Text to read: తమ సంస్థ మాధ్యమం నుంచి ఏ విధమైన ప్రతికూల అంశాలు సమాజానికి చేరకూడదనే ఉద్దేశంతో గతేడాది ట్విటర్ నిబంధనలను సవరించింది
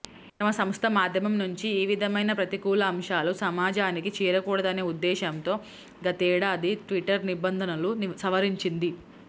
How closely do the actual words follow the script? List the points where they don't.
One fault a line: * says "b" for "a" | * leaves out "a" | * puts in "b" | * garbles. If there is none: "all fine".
all fine